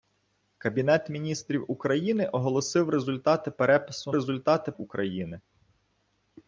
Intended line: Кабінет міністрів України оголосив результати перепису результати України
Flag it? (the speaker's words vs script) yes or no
no